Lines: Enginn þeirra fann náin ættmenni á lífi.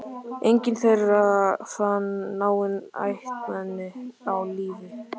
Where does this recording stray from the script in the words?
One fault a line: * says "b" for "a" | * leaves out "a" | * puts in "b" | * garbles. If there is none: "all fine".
all fine